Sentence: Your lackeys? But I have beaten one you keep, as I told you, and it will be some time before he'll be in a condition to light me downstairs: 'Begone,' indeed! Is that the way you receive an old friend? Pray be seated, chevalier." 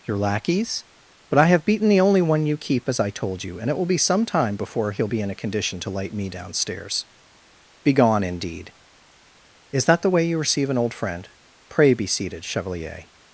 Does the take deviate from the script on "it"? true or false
false